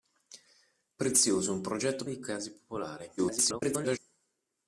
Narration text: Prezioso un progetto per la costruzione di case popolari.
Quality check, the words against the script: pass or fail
fail